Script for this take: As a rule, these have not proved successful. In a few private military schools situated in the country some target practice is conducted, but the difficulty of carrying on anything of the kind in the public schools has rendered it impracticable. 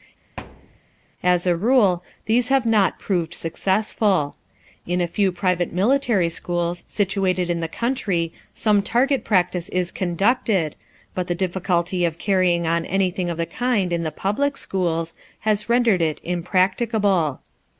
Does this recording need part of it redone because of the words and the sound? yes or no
yes